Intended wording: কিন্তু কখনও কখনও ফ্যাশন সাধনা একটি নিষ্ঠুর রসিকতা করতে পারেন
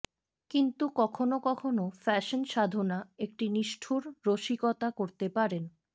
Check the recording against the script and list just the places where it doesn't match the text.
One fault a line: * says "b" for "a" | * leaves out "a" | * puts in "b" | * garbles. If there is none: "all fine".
all fine